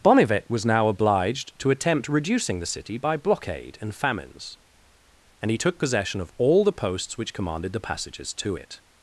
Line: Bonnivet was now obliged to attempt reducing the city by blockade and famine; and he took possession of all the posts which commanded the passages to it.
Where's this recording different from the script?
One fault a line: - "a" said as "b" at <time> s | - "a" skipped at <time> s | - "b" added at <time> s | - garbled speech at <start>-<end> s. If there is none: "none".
- "famine" said as "famines" at 3.9 s